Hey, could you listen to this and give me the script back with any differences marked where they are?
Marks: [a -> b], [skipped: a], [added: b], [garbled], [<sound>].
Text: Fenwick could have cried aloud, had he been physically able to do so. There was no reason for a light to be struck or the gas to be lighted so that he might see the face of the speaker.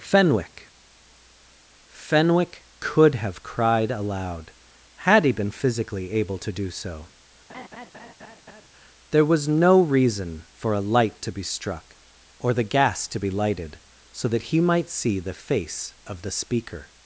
Fenwick [added: fenwick] could have cried aloud, had he been physically able to do so. [laugh] There was no reason for a light to be struck or the gas to be lighted so that he might see the face of the speaker.